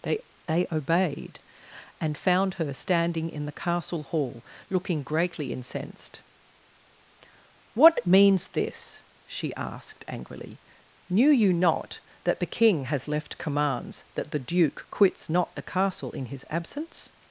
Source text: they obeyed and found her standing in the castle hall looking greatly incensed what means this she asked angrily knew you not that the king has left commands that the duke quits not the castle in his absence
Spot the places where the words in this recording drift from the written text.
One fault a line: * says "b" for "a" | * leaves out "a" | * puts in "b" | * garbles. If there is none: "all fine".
* puts in "they"